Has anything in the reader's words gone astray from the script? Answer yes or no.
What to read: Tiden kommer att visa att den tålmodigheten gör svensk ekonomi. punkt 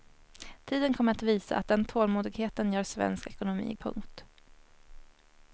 no